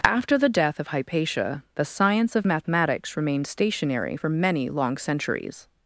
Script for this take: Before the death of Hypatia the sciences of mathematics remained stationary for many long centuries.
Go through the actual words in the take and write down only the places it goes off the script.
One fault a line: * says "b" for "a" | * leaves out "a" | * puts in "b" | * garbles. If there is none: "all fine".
* says "After" for "Before"
* says "science" for "sciences"